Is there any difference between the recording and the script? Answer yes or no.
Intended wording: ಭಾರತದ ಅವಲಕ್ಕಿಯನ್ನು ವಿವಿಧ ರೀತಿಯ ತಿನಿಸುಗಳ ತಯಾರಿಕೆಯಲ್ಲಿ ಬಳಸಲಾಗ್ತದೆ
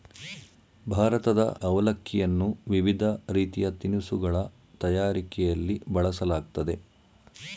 no